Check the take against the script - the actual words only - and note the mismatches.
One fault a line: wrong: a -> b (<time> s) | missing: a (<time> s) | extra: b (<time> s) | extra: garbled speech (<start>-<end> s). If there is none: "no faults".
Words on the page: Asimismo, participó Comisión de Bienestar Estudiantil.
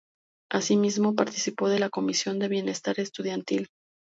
extra: de la (1.7 s)